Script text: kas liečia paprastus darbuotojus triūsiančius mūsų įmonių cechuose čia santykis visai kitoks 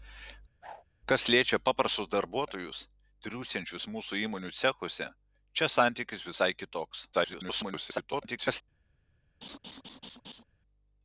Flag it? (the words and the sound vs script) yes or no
yes